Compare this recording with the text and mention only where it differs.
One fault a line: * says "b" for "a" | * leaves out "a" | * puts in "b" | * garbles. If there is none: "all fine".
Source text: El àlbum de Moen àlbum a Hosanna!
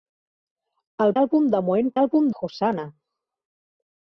all fine